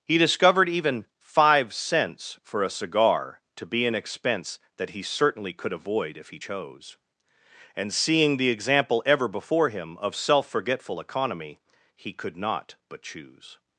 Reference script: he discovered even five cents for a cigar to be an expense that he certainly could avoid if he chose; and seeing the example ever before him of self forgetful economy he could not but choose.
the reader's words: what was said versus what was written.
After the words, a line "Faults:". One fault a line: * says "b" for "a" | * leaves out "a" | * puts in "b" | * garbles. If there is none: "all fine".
he discovered even five cents for a cigar to be an expense that he certainly could avoid if he chose; and seeing the example ever before him of self forgetful economy he could not but choose.
Faults:
all fine